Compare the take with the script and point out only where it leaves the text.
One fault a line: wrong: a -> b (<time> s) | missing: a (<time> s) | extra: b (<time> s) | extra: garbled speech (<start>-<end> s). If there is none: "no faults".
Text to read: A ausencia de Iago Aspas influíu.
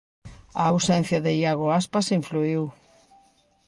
no faults